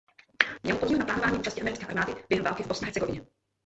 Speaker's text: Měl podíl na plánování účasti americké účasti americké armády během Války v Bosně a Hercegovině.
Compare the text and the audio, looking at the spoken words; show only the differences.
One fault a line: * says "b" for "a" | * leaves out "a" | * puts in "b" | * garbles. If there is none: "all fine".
* leaves out "účasti americké"